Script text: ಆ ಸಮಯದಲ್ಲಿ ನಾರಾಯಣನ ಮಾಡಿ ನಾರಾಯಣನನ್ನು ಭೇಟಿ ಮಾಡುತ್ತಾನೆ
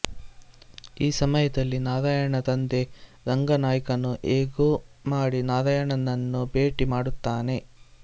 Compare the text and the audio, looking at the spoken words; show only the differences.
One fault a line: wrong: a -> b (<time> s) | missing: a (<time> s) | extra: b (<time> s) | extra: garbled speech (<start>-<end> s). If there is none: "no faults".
wrong: ಆ -> ಈ (1.0 s)
extra: ತಂದೆ ರಂಗನಾಯ್ಕನು ಹೇಗೋ (2.5 s)